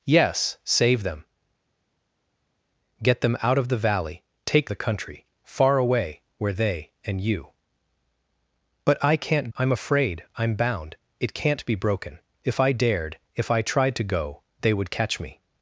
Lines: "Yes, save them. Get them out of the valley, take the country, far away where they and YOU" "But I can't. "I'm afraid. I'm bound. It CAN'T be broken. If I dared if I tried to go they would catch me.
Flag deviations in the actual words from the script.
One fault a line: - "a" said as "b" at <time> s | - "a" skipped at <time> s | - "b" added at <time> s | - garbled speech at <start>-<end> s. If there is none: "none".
none